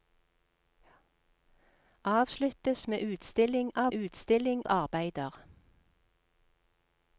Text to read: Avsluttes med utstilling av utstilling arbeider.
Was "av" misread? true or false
false